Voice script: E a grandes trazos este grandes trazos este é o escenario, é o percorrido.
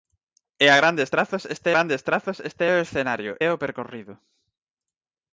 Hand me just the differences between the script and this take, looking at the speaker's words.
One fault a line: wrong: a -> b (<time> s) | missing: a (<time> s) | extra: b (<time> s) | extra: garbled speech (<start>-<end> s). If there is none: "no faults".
no faults